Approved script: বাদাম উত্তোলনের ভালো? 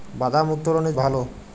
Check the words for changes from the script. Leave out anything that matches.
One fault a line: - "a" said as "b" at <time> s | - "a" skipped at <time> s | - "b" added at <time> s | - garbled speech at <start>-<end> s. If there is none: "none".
none